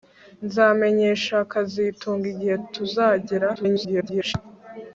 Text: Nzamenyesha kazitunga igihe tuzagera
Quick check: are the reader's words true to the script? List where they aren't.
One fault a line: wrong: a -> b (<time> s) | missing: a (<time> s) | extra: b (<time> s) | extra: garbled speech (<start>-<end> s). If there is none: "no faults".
extra: garbled speech (3.6-4.3 s)